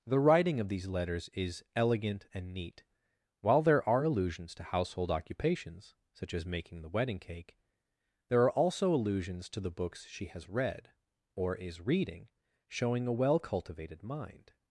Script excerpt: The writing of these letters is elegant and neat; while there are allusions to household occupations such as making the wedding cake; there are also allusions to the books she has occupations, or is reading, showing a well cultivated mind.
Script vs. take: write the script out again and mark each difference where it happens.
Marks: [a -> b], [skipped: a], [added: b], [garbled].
The writing of these letters is elegant and neat; while there are allusions to household occupations such as making the wedding cake; there are also allusions to the books she has [occupations, -> read] or is reading, showing a well cultivated mind.